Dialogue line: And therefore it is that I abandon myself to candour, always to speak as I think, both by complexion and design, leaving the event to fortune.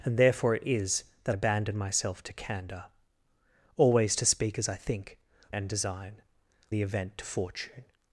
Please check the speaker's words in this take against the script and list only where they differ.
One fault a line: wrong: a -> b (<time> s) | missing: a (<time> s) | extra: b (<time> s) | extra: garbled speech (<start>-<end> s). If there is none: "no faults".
missing: I (1.4 s)
missing: both by complexion (5.2 s)
missing: leaving (6.2 s)